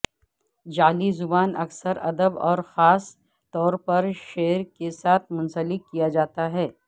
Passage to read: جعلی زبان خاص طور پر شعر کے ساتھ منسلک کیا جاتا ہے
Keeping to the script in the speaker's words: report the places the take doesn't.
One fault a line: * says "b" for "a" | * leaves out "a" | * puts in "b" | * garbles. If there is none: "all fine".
* puts in "اکثر ادب اور"